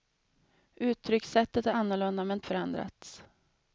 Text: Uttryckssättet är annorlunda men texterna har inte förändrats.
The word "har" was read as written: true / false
false